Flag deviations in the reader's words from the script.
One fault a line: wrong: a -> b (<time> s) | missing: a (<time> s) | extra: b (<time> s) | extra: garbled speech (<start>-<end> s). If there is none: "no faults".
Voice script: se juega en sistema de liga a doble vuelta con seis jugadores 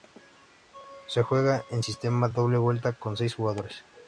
missing: de liga a (2.3 s)